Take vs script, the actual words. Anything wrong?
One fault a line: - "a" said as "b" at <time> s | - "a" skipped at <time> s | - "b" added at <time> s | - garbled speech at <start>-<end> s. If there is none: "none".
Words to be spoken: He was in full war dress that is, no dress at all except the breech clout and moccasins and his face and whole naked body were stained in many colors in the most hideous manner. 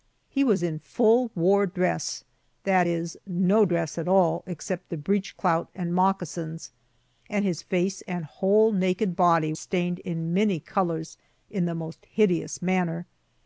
- "were" skipped at 9.5 s